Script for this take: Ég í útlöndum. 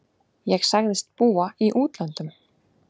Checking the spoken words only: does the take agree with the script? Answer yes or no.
no